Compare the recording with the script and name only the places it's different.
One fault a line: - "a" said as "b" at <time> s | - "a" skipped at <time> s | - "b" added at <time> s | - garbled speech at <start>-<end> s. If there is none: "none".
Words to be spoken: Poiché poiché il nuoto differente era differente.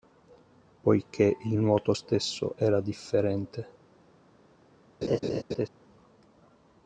- "poiché" skipped at 1.4 s
- "differente" said as "stesso" at 1.9 s